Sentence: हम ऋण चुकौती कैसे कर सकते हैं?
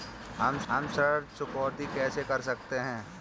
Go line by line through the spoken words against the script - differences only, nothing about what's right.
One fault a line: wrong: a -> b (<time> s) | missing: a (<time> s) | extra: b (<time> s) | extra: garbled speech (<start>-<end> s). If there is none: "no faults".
extra: हम (0.7 s)